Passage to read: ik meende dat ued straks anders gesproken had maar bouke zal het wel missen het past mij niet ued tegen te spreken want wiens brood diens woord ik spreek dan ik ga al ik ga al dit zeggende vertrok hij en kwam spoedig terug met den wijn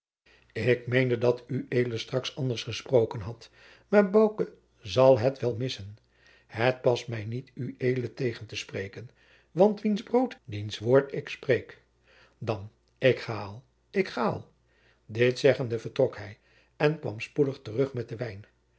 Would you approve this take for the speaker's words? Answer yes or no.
yes